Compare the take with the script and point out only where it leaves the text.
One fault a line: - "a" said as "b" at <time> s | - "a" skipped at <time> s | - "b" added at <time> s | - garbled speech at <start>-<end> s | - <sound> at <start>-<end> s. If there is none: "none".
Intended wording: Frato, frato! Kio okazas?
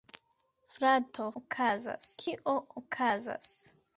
- "frato" said as "okazas" at 1.4 s